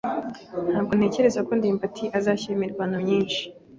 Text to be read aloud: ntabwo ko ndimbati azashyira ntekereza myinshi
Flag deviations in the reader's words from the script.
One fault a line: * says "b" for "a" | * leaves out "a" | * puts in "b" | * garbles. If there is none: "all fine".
* puts in "ntekereza"
* says "imirwano" for "ntekereza"